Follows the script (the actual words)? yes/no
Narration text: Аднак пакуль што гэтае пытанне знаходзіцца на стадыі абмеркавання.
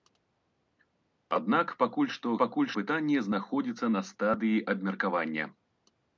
no